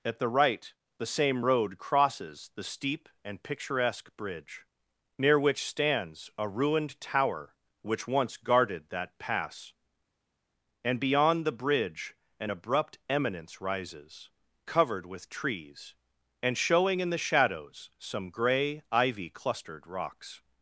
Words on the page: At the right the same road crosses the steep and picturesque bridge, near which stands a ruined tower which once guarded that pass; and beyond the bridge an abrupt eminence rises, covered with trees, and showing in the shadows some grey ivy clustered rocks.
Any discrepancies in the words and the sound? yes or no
no